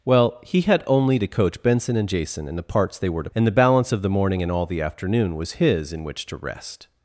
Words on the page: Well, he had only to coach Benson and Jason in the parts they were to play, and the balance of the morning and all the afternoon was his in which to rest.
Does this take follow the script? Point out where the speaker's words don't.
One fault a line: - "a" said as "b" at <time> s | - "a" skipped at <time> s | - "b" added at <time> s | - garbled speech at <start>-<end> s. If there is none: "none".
- "play" skipped at 3.3 s